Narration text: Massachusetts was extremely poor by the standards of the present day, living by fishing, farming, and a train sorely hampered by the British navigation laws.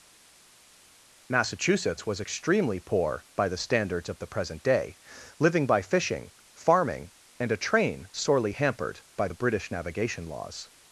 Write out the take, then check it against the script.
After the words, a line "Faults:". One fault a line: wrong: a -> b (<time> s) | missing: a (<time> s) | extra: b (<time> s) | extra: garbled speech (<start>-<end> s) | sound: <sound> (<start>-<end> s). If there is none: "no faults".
Massachusetts was extremely poor by the standards of the present day, living by fishing, farming, and a train sorely hampered by the British navigation laws.
Faults:
no faults